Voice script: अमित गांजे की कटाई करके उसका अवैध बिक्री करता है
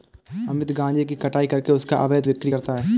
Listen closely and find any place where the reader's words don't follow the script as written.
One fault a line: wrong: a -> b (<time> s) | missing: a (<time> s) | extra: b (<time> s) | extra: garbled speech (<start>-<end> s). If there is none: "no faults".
no faults